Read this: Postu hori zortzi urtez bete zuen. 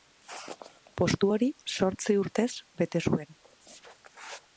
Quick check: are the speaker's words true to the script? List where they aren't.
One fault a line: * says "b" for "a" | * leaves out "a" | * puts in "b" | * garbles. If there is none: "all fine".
all fine